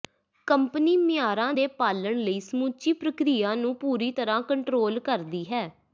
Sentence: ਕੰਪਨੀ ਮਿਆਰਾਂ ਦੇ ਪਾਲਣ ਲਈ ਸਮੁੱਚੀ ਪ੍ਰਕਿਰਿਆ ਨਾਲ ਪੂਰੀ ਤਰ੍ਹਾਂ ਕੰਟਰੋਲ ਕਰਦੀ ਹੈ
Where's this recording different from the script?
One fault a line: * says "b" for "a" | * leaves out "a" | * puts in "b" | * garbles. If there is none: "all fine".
* says "ਨੂੰ" for "ਨਾਲ"